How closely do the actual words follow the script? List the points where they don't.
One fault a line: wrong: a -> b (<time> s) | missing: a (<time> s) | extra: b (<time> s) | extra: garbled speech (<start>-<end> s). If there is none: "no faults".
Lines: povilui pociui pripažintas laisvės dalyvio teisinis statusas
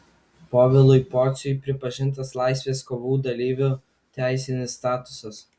extra: kovų (2.9 s)